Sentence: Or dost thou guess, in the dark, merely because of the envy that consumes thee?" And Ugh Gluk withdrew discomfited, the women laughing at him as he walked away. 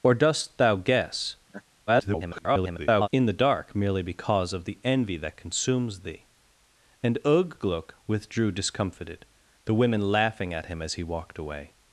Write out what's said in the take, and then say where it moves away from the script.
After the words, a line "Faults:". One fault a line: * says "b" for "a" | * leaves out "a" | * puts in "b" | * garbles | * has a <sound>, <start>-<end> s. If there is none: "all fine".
Or dost thou guess, [garbled] in the dark, merely because of the envy that consumes thee?" And Ugh Gluk withdrew discomfited, the women laughing at him as he walked away.
Faults:
* has a laugh, 1.5-1.6 s
* garbles